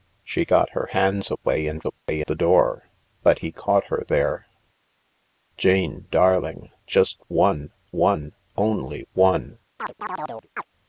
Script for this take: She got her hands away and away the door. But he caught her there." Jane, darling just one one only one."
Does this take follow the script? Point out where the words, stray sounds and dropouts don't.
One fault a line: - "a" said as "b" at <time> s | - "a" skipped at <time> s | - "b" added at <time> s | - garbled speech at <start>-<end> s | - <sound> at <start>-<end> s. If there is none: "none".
- dropout at 2.0-2.1 s
- chirp at 9.8-10.7 s